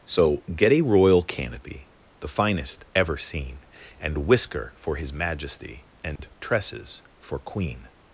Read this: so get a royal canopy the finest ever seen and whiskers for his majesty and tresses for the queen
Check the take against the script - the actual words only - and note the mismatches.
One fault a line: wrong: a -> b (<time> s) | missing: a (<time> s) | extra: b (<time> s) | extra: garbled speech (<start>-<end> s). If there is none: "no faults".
wrong: whiskers -> whisker (4.3 s)
missing: the (7.4 s)